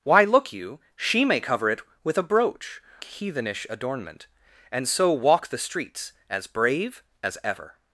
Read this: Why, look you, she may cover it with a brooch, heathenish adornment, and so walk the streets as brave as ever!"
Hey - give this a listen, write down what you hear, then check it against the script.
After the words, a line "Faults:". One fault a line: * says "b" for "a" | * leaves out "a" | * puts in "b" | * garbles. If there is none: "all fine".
Why, look you, she may cover it with a brooch, heathenish adornment, and so walk the streets as brave as ever!"
Faults:
all fine